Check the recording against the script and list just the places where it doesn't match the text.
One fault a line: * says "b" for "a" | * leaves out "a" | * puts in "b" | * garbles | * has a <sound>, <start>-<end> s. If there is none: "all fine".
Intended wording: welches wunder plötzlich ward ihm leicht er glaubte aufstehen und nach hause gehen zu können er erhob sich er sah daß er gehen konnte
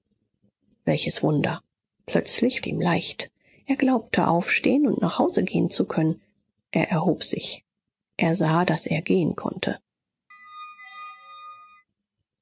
* leaves out "ward"
* has a squeak, 10.3-11.9 s